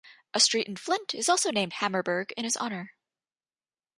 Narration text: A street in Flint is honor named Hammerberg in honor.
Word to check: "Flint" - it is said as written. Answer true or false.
true